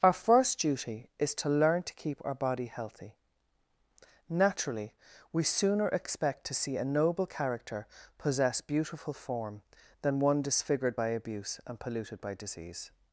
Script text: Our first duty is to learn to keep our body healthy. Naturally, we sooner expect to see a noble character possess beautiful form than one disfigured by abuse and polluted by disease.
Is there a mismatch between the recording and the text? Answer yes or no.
no